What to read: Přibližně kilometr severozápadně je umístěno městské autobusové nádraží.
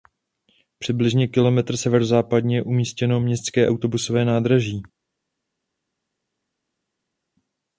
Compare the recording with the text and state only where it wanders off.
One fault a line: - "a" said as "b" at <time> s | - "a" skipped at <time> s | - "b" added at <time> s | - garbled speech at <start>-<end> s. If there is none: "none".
none